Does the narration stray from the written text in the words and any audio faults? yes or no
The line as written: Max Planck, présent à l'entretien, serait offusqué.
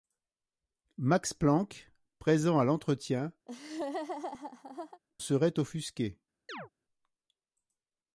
yes